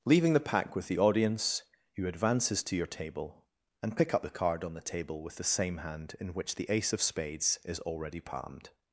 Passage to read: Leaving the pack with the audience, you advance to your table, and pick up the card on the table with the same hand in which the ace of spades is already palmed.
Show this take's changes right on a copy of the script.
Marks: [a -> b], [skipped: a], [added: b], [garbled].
Leaving the pack with the audience, you [advance -> advances] to your table, and pick up the card on the table with the same hand in which the ace of spades is already palmed.